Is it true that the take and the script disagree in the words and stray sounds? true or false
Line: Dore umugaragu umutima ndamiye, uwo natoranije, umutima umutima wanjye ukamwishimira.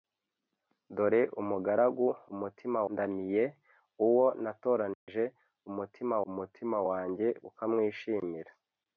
true